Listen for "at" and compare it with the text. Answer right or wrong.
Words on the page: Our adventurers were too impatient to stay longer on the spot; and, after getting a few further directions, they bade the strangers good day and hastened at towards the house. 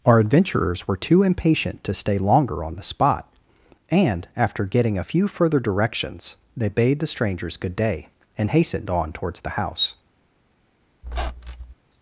wrong